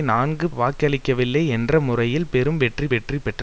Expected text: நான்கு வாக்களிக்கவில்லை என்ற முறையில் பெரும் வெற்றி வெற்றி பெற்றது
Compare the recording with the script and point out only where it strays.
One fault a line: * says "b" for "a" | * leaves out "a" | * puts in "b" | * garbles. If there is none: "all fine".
all fine